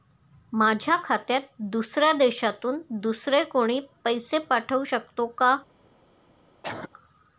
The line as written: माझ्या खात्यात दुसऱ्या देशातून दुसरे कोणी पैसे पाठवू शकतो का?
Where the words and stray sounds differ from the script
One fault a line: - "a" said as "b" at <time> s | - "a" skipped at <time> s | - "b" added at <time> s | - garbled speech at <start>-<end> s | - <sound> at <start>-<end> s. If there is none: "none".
- cough at 6.6-6.9 s